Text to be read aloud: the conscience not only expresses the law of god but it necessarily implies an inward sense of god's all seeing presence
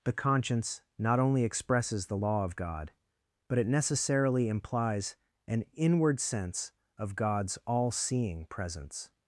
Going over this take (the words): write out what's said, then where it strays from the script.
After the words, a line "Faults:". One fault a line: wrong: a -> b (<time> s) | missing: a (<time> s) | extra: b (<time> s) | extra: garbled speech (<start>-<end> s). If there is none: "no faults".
the conscience not only expresses the law of god but it necessarily implies an inward sense of god's all seeing presence
Faults:
no faults